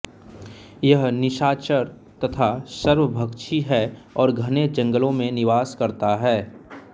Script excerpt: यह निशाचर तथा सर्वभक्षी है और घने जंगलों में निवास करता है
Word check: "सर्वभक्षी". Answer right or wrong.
right